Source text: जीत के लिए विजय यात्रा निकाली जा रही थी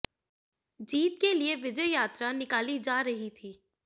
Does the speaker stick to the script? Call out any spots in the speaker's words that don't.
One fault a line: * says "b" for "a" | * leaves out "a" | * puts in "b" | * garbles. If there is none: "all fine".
all fine